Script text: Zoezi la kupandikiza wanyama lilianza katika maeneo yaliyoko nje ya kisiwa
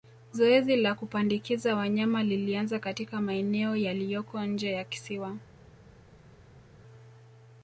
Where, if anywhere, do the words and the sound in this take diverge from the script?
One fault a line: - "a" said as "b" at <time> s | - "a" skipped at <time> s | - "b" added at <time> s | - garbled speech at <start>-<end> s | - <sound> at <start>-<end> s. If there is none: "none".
none